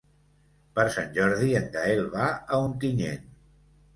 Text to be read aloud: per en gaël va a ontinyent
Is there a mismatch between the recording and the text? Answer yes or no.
yes